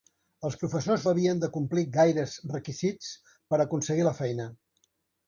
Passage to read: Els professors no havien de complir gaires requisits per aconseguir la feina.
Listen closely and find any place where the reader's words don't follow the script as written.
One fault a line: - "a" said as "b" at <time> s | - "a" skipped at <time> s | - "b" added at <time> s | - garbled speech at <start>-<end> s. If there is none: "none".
- "no" skipped at 1.0 s